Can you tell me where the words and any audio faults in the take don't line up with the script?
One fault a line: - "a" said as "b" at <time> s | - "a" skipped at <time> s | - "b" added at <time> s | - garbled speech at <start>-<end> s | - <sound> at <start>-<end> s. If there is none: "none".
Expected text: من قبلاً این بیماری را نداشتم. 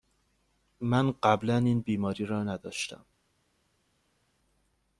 none